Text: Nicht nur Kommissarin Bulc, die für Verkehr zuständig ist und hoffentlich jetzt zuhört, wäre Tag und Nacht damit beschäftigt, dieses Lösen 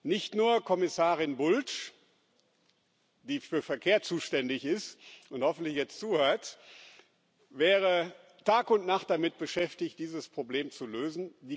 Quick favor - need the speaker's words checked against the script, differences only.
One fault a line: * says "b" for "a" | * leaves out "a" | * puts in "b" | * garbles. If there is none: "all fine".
* puts in "Problem zu"